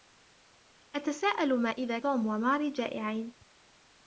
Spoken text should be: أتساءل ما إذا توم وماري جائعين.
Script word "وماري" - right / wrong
right